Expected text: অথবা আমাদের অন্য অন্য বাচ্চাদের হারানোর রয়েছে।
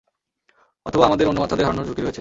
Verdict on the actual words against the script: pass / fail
fail